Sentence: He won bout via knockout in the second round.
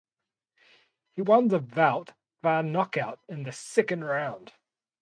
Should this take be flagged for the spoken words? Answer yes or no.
yes